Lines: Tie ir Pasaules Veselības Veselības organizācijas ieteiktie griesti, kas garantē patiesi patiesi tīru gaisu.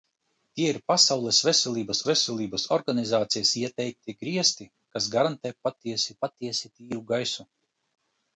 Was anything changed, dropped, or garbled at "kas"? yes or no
no